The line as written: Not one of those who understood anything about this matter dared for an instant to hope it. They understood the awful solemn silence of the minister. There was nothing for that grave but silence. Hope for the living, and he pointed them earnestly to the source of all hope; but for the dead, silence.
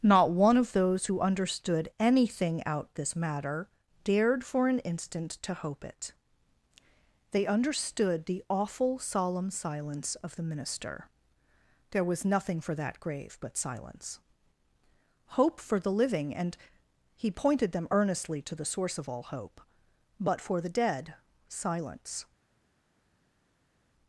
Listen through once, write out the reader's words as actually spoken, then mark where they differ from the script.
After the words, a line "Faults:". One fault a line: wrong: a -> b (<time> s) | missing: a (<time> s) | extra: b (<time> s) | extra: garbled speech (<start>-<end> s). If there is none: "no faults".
Not one of those who understood anything out this matter dared for an instant to hope it. They understood the awful solemn silence of the minister. There was nothing for that grave but silence. Hope for the living, and he pointed them earnestly to the source of all hope; but for the dead, silence.
Faults:
wrong: about -> out (2.6 s)